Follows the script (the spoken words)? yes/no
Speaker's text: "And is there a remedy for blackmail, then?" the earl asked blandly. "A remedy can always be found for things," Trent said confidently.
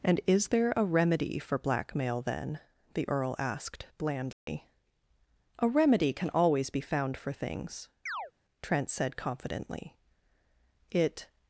no